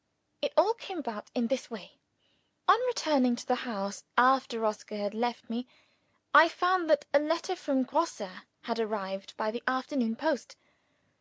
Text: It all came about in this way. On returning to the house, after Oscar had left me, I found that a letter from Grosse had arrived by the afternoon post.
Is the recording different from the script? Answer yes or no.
no